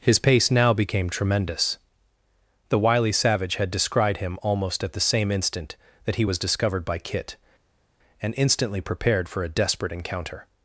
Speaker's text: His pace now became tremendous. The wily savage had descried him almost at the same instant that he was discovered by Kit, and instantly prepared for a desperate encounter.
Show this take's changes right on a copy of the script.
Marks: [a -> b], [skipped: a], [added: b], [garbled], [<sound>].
His pace now became tremendous. The wily savage had descried him almost at the same instant that he was discovered by Kit, and instantly prepared for a desperate encounter.